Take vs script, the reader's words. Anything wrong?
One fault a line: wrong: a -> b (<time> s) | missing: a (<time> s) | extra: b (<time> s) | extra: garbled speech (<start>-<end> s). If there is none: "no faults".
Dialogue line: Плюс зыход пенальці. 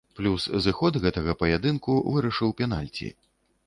extra: гэтага паядынку вырашыў (1.1 s)